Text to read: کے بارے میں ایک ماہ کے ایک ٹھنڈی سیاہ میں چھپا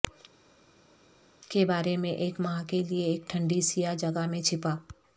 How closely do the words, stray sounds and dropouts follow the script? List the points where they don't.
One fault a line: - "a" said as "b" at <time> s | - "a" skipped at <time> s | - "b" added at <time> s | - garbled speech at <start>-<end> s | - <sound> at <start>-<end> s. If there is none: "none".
- "لئے" added at 2.9 s
- "جگہ" added at 4.0 s